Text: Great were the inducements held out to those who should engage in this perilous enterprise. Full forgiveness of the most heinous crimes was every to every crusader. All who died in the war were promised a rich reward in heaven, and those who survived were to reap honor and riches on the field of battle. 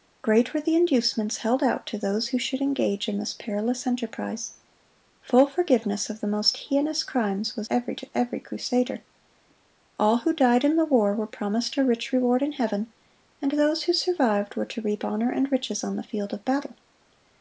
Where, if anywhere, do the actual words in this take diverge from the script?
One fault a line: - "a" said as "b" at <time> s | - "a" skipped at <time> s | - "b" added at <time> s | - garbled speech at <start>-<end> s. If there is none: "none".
none